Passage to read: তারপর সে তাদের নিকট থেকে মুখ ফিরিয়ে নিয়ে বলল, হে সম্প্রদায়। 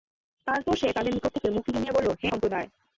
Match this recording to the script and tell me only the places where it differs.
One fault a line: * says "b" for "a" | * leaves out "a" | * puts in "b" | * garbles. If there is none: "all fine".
all fine